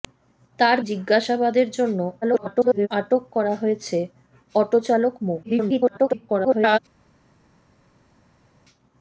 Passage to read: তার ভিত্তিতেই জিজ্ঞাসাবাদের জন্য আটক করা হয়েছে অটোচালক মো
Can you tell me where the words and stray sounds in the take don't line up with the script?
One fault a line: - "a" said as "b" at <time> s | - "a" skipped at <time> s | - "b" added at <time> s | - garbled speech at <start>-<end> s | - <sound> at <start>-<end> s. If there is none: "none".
- "ভিত্তিতেই" skipped at 0.8 s
- garbled speech at 2.2-2.9 s
- garbled speech at 5.4-6.8 s